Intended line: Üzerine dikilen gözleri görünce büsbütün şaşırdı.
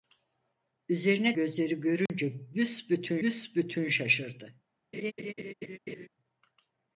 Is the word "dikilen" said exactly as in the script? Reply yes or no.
no